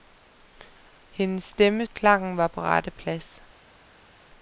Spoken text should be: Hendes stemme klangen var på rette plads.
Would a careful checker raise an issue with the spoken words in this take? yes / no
no